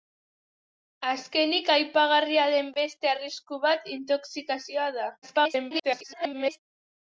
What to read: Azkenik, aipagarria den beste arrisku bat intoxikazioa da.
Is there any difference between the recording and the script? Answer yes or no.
yes